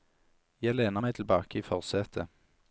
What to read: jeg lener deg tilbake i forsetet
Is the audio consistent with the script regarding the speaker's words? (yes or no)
no